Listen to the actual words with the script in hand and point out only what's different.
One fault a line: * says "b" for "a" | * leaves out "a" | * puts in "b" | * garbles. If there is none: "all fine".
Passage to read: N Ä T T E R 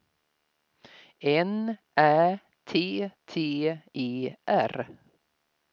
all fine